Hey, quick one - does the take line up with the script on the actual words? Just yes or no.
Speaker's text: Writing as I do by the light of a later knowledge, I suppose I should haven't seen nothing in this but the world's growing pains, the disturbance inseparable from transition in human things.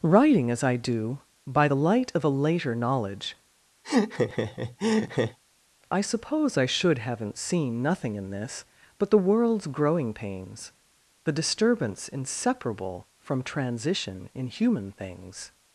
yes